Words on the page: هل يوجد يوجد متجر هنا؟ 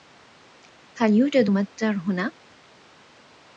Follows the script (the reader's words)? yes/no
no